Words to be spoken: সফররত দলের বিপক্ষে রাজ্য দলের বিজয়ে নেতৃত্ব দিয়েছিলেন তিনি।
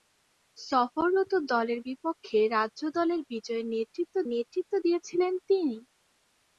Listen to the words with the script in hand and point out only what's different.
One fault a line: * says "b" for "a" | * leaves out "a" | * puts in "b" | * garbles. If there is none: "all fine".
* puts in "নেতৃত্ব"